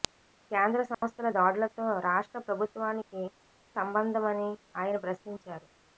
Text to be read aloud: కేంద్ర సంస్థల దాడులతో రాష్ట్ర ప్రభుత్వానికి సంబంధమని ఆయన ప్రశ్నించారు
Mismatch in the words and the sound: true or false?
true